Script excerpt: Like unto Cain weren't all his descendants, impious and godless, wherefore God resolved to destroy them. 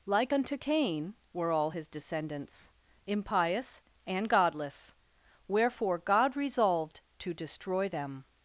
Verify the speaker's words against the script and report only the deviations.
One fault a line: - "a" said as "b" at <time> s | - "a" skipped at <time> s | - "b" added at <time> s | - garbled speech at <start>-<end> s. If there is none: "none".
- "weren't" said as "were" at 1.3 s